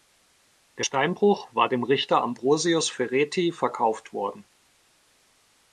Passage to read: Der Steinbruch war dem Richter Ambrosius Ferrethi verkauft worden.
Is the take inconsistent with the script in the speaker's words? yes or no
no